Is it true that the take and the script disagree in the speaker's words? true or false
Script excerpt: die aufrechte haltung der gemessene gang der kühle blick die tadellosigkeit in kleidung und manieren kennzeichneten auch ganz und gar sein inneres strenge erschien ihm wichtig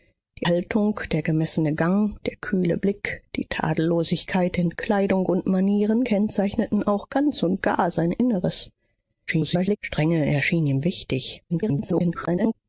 true